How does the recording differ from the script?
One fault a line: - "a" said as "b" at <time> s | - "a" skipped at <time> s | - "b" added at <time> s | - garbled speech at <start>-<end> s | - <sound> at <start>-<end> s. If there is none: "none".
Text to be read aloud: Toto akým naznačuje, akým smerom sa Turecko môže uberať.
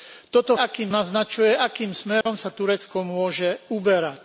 - dropout at 2.2-2.3 s